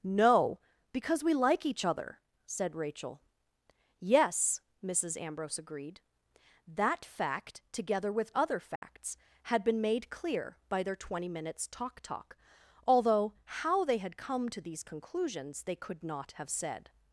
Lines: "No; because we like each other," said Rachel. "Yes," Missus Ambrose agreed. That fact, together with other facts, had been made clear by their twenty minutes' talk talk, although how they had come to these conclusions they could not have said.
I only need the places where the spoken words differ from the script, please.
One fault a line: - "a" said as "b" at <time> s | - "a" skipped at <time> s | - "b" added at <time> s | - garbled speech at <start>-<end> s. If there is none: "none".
none